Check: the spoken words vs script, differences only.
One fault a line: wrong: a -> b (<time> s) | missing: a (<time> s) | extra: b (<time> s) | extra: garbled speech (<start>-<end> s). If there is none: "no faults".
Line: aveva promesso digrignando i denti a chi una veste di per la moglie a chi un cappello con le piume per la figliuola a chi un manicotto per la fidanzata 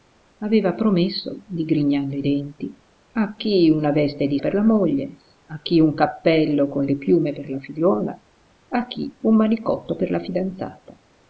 no faults